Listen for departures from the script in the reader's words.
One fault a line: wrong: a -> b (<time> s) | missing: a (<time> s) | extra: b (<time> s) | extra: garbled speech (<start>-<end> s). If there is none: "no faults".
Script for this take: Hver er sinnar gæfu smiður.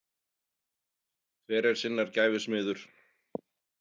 no faults